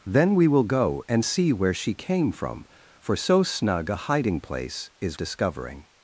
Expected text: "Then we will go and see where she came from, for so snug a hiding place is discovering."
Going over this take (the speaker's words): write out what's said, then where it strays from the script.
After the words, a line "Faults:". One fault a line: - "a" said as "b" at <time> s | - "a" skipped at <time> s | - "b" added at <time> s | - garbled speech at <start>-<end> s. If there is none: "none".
"Then we will go and see where she came from, for so snug a hiding place is discovering."
Faults:
none